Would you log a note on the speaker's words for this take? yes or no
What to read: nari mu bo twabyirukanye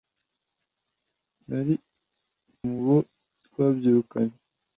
no